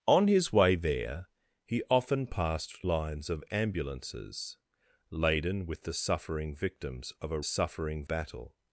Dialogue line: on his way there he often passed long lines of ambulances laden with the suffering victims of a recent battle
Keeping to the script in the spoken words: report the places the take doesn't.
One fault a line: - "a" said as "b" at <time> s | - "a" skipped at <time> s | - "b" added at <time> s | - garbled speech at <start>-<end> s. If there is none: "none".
- "long" skipped at 2.9 s
- "recent" said as "suffering" at 7.4 s